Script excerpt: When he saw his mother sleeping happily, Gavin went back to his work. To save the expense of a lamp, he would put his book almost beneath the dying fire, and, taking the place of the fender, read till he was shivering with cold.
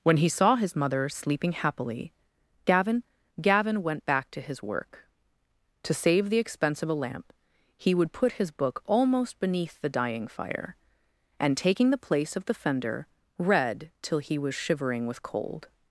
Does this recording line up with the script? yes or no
no